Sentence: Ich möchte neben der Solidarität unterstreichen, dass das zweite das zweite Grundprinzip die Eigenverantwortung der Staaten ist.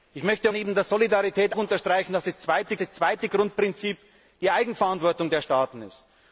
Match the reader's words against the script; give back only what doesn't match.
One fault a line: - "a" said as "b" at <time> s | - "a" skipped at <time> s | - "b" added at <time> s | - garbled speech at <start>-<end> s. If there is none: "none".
none